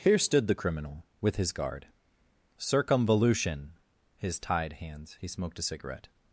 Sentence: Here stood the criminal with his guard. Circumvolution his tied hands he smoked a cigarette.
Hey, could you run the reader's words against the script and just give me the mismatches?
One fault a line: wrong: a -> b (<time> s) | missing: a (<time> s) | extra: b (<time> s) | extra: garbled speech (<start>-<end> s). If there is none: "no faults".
no faults